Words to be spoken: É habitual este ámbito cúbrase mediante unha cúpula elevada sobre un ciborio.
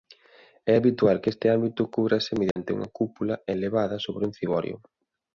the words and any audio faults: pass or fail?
fail